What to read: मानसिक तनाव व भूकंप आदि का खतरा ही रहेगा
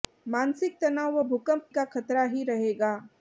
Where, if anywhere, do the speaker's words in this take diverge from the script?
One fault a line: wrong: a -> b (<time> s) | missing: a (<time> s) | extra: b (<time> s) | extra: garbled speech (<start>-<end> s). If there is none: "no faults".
missing: आदि (1.7 s)